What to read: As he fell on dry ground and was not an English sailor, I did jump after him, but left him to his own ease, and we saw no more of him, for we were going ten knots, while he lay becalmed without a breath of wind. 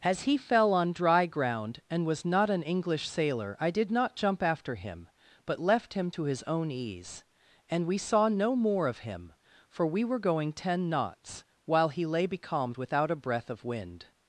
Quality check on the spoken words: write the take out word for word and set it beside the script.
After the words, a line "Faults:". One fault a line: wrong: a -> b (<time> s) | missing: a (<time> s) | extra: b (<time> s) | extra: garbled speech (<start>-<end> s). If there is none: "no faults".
As he fell on dry ground and was not an English sailor, I did not jump after him, but left him to his own ease, and we saw no more of him, for we were going ten knots, while he lay becalmed without a breath of wind.
Faults:
extra: not (3.9 s)